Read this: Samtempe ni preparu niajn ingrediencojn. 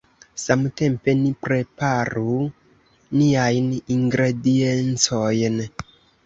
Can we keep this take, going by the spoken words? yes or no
yes